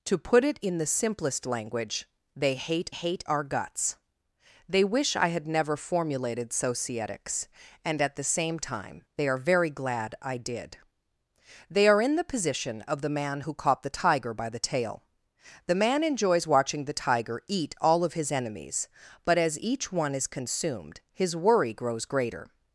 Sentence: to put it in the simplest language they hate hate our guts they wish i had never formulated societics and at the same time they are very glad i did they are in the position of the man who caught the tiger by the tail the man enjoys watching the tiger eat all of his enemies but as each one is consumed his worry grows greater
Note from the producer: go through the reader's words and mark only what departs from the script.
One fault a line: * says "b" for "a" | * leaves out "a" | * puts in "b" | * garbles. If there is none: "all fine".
all fine